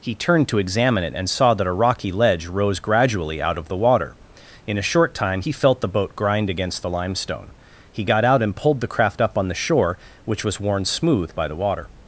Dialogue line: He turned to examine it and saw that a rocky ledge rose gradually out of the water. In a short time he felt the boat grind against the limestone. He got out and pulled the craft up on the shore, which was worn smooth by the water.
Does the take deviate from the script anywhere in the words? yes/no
no